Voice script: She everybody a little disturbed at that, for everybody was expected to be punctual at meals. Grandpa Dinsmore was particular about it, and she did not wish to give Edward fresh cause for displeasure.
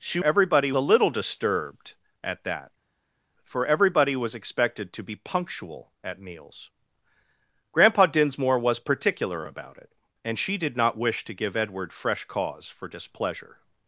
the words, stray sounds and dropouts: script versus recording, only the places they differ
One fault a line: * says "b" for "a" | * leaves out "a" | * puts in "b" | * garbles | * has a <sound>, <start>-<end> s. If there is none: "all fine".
all fine